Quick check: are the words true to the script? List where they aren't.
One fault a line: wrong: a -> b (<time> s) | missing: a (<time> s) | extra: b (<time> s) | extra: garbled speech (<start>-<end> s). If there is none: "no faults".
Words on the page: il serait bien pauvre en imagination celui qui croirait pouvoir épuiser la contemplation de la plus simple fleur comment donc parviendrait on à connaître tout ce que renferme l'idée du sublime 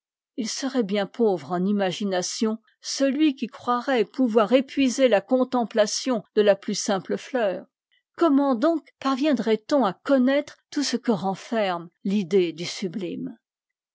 no faults